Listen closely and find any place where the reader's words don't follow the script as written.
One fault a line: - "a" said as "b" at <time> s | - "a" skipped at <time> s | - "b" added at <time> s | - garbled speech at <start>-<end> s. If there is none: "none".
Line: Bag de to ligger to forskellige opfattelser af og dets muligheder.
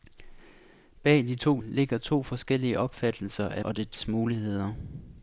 none